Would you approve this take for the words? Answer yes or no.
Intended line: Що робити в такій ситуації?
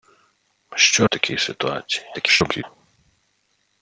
no